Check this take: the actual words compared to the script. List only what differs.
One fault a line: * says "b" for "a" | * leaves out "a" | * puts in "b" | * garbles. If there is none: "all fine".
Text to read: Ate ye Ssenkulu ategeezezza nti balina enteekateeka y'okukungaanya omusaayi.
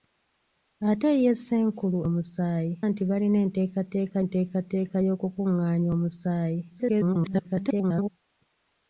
* says "omusaayi" for "ategeezezza"
* puts in "enteekateeka"
* garbles